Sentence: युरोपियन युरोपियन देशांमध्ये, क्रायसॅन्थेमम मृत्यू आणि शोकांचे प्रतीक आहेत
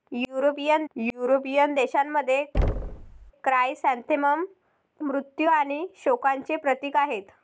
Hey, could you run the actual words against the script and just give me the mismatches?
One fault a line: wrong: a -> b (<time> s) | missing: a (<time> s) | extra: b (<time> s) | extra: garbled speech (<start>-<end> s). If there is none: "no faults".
no faults